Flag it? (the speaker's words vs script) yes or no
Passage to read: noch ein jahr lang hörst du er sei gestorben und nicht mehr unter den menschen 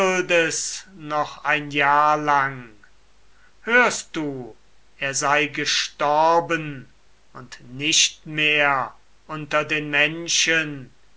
no